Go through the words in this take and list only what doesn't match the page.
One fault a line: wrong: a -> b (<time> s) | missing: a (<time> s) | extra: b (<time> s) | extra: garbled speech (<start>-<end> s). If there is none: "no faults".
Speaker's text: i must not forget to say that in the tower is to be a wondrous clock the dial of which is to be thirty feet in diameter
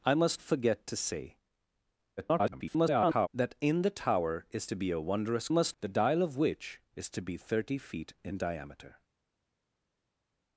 missing: not (0.4 s)
extra: garbled speech (2.2-3.3 s)
wrong: clock -> must (5.5 s)